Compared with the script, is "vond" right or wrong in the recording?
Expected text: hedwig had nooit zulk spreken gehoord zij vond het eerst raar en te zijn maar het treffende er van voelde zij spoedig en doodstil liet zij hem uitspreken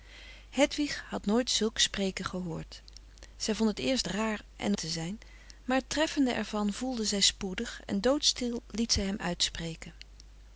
right